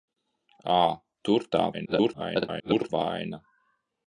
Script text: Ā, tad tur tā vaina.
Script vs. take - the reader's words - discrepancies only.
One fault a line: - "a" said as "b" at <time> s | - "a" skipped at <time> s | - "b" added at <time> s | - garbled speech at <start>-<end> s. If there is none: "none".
- "tad" skipped at 0.8 s
- garbled speech at 1.7-2.9 s